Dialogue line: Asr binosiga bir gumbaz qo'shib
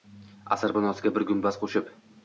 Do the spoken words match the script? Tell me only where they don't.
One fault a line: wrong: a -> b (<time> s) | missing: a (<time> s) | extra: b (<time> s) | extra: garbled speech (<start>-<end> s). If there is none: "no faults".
no faults